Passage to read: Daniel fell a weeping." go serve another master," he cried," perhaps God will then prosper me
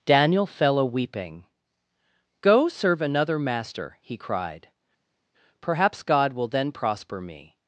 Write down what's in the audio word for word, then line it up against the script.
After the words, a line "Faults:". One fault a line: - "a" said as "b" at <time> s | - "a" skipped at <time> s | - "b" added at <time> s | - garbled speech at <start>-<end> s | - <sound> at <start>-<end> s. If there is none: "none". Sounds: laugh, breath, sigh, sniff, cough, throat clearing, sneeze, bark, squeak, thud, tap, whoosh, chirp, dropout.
Daniel fell a weeping." go serve another master," he cried," perhaps God will then prosper me
Faults:
none